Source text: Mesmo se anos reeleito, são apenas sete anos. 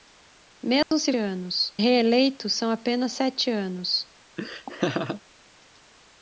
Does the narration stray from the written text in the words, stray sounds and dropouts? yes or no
yes